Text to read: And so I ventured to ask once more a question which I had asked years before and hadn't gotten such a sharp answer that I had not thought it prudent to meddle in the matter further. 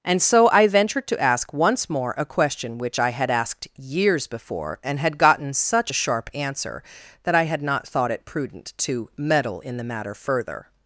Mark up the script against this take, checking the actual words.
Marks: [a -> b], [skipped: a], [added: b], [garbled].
And so I ventured to ask once more a question which I had asked years before and [hadn't -> had] gotten such a sharp answer that I had not thought it prudent to meddle in the matter further.